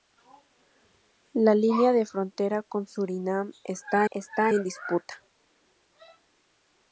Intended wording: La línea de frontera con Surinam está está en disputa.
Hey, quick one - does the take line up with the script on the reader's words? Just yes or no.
yes